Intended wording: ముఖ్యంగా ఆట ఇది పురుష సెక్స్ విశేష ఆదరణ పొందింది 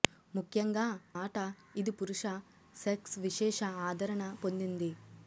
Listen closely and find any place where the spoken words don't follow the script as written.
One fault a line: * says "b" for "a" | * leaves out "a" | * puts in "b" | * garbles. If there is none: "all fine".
all fine